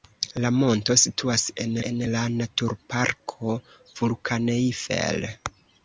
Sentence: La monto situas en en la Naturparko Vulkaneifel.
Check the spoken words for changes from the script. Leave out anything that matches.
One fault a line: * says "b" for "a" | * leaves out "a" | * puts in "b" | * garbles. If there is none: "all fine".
all fine